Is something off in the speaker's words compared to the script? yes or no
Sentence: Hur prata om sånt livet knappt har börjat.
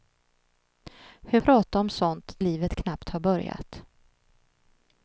no